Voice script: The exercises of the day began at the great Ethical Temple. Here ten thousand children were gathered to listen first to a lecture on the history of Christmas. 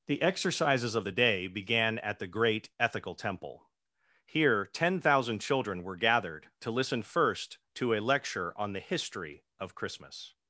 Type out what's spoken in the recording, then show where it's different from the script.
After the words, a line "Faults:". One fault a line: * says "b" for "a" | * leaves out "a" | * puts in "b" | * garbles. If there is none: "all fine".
The exercises of the day began at the great Ethical Temple. Here ten thousand children were gathered to listen first to a lecture on the history of Christmas.
Faults:
all fine